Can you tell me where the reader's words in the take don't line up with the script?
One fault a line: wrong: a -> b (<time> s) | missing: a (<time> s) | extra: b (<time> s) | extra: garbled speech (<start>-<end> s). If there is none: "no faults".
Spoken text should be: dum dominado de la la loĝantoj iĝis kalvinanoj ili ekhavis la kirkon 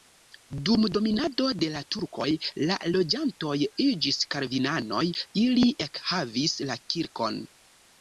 extra: turkoj (2.0 s)